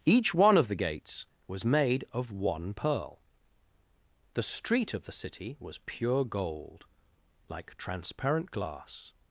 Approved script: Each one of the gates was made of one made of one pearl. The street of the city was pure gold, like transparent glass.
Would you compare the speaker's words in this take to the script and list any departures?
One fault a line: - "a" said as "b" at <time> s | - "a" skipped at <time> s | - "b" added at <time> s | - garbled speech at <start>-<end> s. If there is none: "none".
- "made of one" skipped at 2.7 s